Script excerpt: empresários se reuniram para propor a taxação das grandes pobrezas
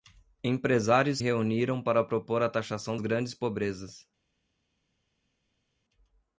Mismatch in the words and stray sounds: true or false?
true